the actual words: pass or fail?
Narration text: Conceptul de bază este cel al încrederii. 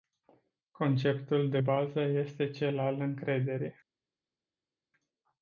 pass